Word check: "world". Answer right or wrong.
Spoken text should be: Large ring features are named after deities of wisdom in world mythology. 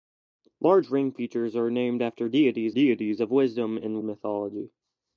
wrong